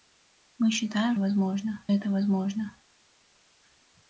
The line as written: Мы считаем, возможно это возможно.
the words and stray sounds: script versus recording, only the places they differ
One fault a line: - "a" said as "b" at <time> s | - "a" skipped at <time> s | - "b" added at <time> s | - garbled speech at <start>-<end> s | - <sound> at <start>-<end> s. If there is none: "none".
none